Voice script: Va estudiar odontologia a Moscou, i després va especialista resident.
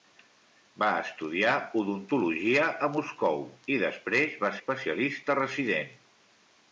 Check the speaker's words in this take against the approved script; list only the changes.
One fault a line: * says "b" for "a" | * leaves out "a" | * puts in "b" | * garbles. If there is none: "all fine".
all fine